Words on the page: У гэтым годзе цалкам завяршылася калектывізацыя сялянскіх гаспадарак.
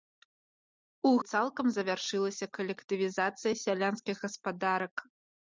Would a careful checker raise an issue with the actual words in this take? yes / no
yes